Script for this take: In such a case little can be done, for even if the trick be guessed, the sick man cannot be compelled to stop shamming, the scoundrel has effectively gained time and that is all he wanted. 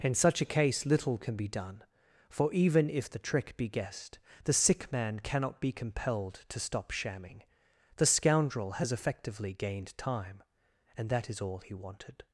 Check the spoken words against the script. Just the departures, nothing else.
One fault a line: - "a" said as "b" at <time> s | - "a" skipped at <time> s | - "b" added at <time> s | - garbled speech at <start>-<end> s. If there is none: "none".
none